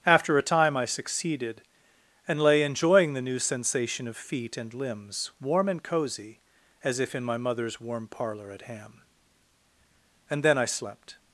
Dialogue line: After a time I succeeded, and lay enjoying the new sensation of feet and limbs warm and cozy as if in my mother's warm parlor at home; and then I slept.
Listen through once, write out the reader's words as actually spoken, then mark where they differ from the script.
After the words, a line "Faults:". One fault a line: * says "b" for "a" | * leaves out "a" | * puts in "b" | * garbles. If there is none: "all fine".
After a time I succeeded, and lay enjoying the new sensation of feet and limbs warm and cozy as if in my mother's warm parlor at ham; and then I slept.
Faults:
* says "ham" for "home"